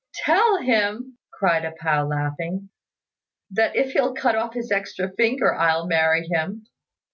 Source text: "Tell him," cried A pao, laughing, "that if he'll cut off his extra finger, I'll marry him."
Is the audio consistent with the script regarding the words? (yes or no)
yes